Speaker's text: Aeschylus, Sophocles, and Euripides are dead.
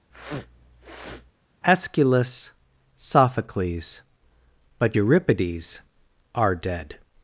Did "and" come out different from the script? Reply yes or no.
yes